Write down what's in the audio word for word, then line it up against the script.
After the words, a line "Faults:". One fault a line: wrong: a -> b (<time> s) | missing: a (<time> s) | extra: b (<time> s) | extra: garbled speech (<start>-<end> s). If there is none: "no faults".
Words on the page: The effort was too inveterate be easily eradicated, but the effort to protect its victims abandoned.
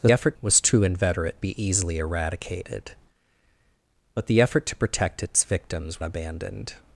The effort was too inveterate be easily eradicated, but the effort to protect its victims abandoned.
Faults:
no faults